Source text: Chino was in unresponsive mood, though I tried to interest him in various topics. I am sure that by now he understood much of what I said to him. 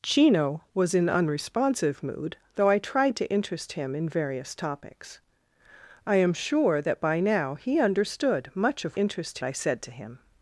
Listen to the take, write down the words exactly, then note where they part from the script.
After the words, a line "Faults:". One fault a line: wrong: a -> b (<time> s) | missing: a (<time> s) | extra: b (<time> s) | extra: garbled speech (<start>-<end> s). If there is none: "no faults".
Chino was in unresponsive mood, though I tried to interest him in various topics. I am sure that by now he understood much of interest I said to him.
Faults:
wrong: what -> interest (9.0 s)